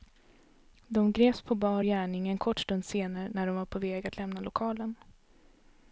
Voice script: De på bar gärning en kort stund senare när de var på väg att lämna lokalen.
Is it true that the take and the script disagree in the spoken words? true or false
true